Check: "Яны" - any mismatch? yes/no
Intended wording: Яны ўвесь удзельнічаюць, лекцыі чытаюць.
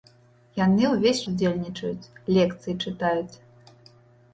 no